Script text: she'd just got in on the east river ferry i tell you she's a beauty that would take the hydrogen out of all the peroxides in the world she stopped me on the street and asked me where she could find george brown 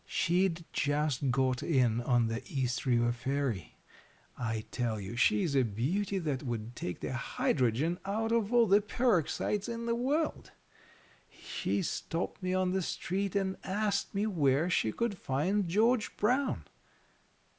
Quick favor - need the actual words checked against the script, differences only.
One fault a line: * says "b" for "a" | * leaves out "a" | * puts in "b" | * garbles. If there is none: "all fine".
all fine